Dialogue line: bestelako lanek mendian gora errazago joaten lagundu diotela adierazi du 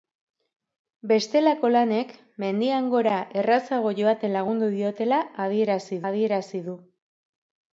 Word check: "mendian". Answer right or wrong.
right